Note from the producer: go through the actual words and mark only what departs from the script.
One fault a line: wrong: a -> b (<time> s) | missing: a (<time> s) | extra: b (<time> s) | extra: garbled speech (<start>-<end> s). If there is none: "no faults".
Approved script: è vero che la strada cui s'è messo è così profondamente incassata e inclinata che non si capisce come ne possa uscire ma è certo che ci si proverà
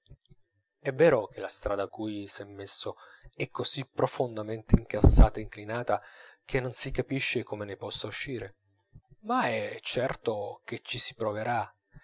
no faults